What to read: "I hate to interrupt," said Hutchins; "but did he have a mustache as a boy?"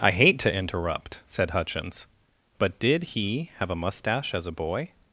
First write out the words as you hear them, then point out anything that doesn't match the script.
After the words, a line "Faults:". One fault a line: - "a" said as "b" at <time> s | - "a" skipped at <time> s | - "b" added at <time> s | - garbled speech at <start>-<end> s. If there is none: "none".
"I hate to interrupt," said Hutchins; "but did he have a mustache as a boy?"
Faults:
none